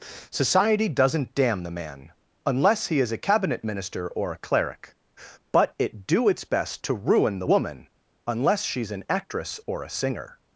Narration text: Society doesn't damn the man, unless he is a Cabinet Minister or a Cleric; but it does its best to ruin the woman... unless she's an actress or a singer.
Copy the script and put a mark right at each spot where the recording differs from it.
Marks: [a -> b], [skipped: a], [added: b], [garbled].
Society doesn't damn the man, unless he is a Cabinet Minister or a Cleric; but it [does -> do] its best to ruin the woman... unless she's an actress or a singer.